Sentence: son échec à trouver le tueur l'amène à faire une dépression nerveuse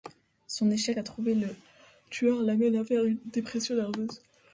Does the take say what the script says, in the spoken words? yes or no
yes